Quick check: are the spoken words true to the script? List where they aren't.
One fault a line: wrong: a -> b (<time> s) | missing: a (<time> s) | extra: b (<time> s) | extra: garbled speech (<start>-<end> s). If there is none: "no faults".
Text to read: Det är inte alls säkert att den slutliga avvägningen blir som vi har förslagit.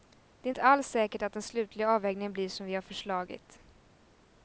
no faults